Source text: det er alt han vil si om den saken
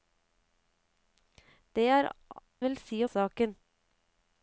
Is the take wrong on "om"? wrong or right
wrong